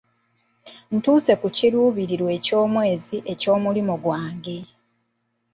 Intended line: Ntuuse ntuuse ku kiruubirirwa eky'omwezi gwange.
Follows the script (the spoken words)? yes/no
no